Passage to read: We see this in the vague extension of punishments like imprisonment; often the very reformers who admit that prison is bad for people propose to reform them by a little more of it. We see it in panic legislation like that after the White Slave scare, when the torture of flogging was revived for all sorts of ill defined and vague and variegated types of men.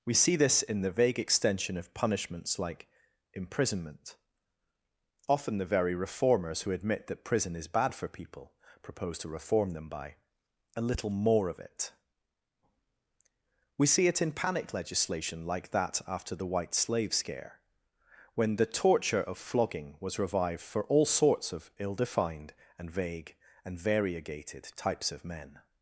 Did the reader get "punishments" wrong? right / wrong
right